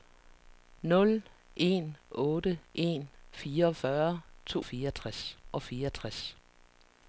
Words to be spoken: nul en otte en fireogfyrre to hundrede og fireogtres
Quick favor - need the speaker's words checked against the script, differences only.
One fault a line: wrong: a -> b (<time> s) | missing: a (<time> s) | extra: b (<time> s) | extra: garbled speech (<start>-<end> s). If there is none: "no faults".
wrong: hundrede -> fireogtres (4.6 s)